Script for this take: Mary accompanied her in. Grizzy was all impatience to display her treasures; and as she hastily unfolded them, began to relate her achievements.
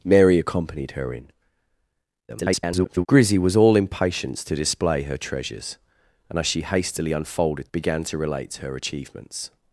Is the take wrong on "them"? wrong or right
wrong